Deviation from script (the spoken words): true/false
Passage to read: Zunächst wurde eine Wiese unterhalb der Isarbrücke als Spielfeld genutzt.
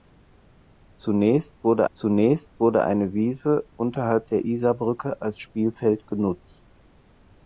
true